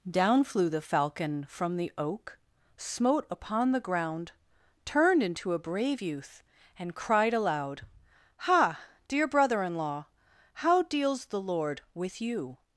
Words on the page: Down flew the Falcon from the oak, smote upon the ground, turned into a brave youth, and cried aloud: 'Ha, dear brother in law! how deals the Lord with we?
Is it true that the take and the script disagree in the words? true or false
true